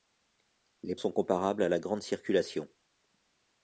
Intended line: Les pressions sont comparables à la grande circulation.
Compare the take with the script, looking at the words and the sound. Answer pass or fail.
fail